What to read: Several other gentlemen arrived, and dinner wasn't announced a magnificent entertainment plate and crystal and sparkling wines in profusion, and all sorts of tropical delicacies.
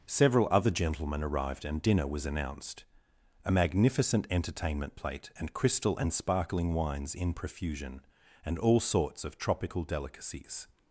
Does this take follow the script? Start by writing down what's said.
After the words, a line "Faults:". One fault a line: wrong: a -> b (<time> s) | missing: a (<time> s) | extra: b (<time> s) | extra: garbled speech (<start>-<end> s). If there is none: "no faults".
Several other gentlemen arrived, and dinner was announced a magnificent entertainment plate and crystal and sparkling wines in profusion, and all sorts of tropical delicacies.
Faults:
wrong: wasn't -> was (2.1 s)